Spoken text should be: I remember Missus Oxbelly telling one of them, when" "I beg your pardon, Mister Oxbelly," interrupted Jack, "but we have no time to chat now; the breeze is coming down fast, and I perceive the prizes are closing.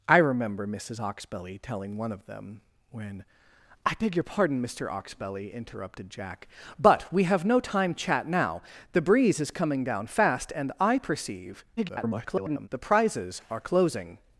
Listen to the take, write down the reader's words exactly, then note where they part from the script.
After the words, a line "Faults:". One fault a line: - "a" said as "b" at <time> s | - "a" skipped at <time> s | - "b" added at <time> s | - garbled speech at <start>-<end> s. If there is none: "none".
I remember Missus Oxbelly telling one of them, when" "I beg your pardon, Mister Oxbelly," interrupted Jack, "but we have no time chat now; the breeze is coming down fast, and I perceive [garbled] the prizes are closing.
Faults:
- "to" skipped at 7.9 s
- garbled speech at 11.8-12.7 s